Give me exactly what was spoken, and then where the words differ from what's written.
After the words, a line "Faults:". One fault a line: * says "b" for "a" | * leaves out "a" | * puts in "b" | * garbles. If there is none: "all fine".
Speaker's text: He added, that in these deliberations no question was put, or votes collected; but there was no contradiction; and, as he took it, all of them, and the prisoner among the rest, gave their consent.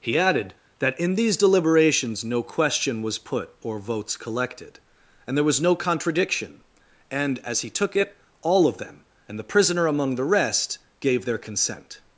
He added, that in these deliberations no question was put, or votes collected; and there was no contradiction; and, as he took it, all of them, and the prisoner among the rest, gave their consent.
Faults:
* says "and" for "but"